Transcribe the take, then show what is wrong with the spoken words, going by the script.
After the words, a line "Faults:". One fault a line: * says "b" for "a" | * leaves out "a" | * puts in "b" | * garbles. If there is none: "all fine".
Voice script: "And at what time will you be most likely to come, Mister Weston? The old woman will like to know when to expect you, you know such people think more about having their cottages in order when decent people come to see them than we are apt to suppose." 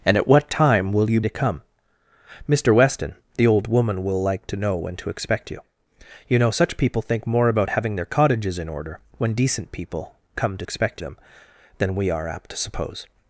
"And at what time will you to come, Mister Weston? The old woman will like to know when to expect you, you know such people think more about having their cottages in order when decent people come to expect them than we are apt to suppose."
Faults:
* leaves out "be most likely"
* says "expect" for "see"